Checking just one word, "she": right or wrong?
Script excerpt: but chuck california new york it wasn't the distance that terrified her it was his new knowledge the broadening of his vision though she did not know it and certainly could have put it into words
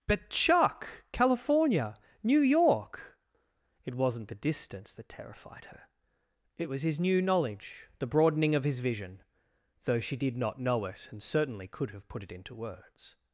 right